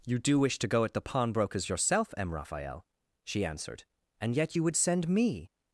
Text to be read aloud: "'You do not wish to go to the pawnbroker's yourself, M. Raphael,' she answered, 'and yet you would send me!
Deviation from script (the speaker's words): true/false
true